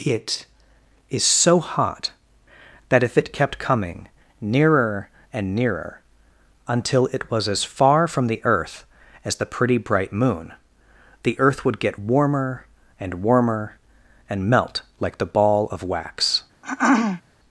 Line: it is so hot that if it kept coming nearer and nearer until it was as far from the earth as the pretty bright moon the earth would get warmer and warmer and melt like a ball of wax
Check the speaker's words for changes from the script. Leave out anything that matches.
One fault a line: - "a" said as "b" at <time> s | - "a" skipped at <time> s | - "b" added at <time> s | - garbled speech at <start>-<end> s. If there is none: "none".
- "a" said as "the" at 15.2 s